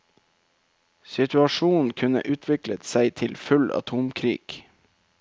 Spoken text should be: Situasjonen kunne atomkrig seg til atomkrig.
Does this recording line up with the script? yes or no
no